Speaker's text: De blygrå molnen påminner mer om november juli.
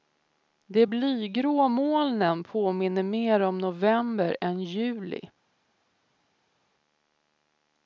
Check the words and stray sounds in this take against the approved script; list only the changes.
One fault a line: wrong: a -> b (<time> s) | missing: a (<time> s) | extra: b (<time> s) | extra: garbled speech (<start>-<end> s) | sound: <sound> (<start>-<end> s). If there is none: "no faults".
extra: än (4.4 s)